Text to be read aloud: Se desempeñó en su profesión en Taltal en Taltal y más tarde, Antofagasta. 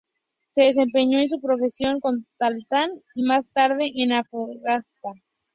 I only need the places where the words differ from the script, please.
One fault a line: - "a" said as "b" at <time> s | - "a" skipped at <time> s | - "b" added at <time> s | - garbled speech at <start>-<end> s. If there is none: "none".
- "en Taltal" skipped at 2.9 s
- "en" added at 3.9 s